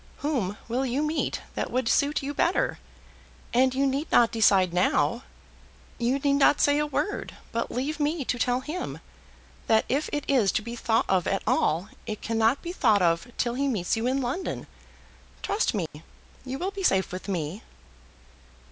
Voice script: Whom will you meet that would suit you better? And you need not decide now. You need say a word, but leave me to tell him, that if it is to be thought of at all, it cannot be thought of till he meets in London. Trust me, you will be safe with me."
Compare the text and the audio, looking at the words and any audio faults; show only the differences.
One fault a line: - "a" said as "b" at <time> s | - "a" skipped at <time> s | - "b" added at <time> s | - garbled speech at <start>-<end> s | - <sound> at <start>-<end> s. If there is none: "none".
- "not" added at 6.4 s
- "you" added at 13.9 s
- dropout at 15.9-15.9 s